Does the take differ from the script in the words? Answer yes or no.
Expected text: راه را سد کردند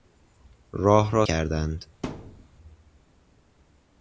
yes